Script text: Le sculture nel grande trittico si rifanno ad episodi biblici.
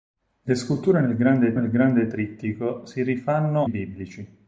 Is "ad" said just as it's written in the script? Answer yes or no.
no